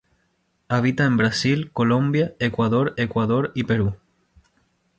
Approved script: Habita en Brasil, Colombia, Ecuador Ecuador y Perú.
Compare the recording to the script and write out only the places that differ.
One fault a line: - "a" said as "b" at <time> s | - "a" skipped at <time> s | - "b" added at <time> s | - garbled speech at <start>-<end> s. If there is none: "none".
none